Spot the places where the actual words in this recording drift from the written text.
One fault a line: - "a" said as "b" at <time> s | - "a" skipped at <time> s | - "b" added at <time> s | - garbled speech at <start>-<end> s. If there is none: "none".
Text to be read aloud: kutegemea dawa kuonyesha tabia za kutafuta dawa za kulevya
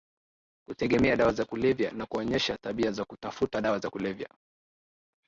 - "za kulevya na" added at 1.3 s